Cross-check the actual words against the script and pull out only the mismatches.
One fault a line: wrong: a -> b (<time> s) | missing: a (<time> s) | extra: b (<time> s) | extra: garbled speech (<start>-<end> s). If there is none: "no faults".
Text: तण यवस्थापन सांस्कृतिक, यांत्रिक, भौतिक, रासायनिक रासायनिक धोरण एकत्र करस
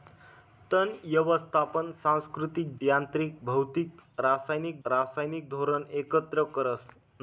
no faults